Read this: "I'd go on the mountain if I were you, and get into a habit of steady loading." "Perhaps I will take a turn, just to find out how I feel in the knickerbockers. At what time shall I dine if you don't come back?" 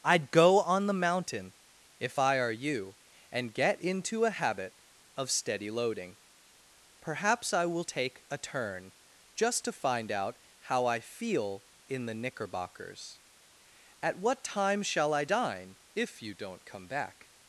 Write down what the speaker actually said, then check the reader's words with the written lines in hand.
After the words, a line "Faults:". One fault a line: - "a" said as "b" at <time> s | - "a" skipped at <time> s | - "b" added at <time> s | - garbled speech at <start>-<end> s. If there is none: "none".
"I'd go on the mountain if I are you, and get into a habit of steady loading." "Perhaps I will take a turn, just to find out how I feel in the knickerbockers. At what time shall I dine if you don't come back?"
Faults:
- "were" said as "are" at 2.4 s